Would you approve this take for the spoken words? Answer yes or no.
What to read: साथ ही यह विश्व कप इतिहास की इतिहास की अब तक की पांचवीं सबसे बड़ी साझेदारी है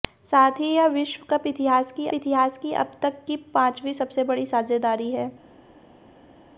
yes